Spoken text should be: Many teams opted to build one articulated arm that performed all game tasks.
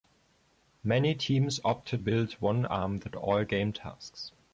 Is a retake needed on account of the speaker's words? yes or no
yes